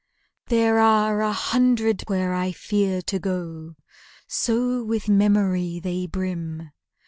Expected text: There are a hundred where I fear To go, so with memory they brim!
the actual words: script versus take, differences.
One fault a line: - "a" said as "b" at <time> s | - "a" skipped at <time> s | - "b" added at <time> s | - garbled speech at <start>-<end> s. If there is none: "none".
none